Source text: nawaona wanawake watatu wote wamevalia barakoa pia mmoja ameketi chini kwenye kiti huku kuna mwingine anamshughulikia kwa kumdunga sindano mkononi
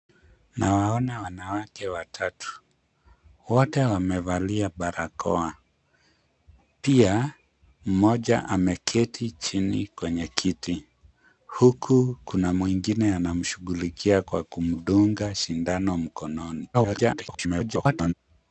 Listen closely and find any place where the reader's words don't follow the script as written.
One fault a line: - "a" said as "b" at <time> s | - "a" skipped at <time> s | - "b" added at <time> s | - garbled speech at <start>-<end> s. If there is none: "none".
- garbled speech at 16.7-18.1 s